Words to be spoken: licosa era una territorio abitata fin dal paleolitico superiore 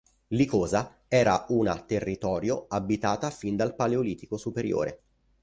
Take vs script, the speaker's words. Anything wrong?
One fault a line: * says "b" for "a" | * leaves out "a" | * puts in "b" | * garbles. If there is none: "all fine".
all fine